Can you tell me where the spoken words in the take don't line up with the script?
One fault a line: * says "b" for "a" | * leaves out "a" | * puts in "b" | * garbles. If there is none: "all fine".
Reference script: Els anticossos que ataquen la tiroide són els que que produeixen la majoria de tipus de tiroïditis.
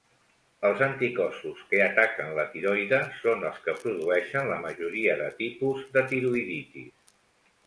* leaves out "que"